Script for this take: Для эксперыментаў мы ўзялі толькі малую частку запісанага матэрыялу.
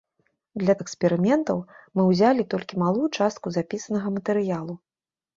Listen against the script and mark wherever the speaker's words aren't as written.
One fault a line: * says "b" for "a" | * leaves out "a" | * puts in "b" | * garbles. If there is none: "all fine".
all fine